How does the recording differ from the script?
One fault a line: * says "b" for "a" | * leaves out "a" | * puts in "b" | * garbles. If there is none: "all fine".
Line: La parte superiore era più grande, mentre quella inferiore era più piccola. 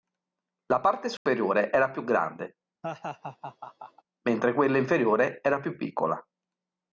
all fine